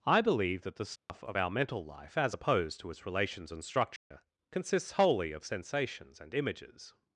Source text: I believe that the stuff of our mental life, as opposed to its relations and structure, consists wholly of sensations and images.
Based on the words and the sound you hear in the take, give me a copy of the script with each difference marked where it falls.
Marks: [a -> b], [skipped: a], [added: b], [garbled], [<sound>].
I believe that the stuff [dropout] of our mental life, as opposed to its relations and structure, [dropout] consists wholly of sensations and images.